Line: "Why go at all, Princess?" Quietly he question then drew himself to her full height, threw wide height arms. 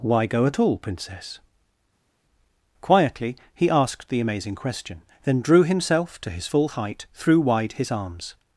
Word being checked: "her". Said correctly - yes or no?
no